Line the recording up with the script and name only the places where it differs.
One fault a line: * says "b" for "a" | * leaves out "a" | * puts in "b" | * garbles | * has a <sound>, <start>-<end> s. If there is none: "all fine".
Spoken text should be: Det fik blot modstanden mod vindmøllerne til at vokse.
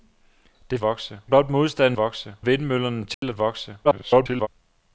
* says "vokse" for "fik"
* says "vokse" for "mod"
* has a dropout, 3.1-3.2 s
* garbles